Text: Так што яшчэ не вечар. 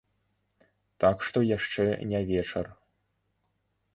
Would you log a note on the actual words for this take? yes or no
no